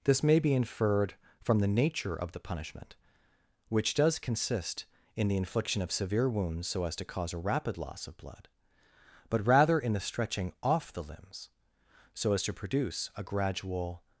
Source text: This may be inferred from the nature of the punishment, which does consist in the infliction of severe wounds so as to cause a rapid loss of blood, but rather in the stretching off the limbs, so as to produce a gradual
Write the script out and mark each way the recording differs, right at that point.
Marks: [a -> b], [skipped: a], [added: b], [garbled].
This may be inferred from the nature of the punishment, which does consist in the infliction of severe wounds so as to cause a rapid loss of blood, but rather in the stretching off the limbs, so as to produce a gradual